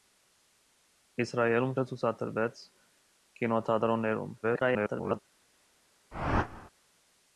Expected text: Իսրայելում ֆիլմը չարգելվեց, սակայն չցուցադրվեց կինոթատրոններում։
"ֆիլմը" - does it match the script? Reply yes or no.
no